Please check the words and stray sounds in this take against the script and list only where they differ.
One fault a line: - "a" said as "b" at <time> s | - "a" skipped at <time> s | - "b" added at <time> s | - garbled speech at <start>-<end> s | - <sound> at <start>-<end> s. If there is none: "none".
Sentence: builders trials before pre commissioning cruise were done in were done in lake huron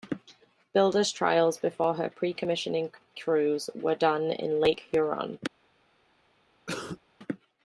- "her" added at 1.9 s
- "were done in" skipped at 4.6 s
- cough at 6.7-7.0 s